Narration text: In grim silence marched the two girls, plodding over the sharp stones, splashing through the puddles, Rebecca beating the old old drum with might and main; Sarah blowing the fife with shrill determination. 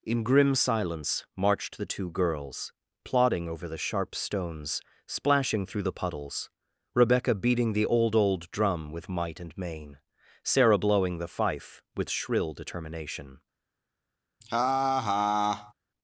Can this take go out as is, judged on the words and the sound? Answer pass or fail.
fail